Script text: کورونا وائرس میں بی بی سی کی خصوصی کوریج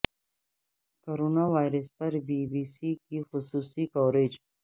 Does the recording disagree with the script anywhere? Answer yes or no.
yes